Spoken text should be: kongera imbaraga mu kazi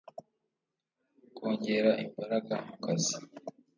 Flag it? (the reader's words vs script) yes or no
no